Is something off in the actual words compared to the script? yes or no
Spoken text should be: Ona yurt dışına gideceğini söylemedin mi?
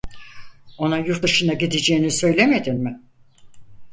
no